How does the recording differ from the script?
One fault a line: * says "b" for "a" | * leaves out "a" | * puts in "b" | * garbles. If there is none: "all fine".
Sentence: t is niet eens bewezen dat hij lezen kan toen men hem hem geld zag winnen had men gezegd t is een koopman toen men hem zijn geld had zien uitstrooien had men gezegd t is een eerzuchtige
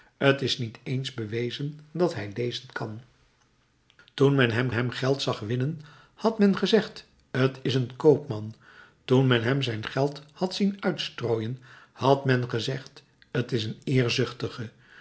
all fine